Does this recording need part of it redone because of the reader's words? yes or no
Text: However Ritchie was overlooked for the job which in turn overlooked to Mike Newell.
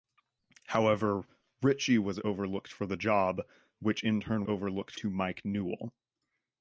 no